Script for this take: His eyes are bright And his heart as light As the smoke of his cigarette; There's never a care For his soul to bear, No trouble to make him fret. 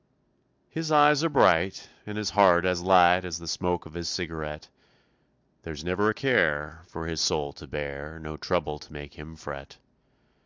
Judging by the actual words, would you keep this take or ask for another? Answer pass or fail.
pass